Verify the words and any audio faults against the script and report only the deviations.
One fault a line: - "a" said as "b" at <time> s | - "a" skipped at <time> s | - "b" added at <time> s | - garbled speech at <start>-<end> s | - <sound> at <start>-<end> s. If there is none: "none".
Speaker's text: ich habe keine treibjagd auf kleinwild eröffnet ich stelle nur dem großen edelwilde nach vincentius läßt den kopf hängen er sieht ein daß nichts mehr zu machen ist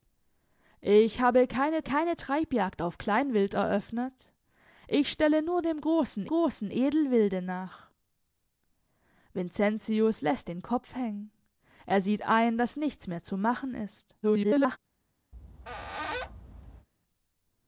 - "keine" added at 1.8 s
- "großen" added at 6.3 s
- garbled speech at 14.2-14.8 s
- squeak at 15.3-16.9 s